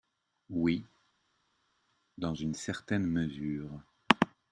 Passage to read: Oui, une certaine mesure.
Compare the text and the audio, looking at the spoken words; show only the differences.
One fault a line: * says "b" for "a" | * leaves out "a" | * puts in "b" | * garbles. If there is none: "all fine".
* puts in "dans"